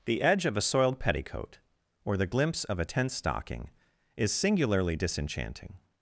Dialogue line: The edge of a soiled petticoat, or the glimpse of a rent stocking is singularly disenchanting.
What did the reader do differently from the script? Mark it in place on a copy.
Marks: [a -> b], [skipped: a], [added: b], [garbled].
The edge of a soiled petticoat, or the glimpse of a [rent -> tent] stocking is singularly disenchanting.